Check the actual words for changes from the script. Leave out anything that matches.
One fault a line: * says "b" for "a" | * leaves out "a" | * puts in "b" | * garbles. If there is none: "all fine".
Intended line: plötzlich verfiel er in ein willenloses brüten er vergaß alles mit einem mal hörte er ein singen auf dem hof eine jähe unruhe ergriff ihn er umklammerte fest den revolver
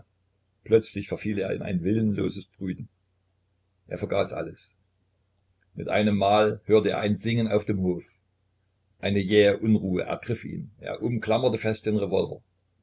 all fine